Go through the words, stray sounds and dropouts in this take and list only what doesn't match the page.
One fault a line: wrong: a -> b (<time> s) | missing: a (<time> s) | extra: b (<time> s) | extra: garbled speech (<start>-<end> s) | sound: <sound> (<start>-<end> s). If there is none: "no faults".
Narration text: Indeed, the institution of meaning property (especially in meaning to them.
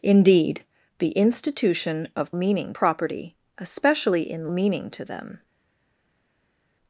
no faults